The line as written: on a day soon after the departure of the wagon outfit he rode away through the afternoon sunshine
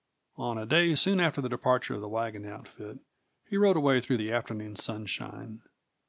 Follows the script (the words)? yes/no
yes